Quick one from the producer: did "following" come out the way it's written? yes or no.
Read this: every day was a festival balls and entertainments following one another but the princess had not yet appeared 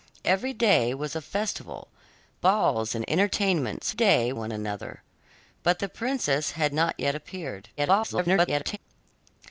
no